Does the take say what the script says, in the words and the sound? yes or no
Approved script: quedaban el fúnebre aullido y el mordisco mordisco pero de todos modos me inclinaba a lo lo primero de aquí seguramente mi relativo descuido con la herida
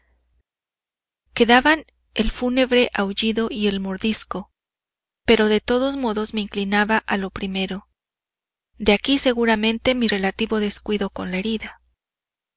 no